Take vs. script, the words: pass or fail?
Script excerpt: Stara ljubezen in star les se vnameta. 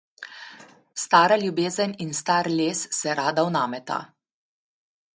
fail